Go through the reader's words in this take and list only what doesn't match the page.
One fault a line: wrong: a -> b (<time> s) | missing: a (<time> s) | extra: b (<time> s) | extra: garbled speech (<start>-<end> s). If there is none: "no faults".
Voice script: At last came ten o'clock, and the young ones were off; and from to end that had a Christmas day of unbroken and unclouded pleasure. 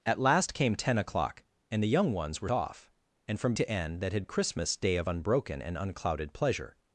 no faults